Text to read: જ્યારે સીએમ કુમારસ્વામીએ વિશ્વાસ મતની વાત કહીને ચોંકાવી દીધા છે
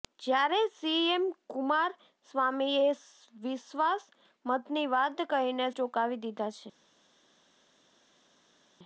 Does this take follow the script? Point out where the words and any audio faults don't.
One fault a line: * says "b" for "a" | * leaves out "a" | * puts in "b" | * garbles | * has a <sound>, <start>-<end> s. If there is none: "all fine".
all fine